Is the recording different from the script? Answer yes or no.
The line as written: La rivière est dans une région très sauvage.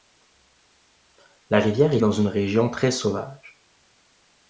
no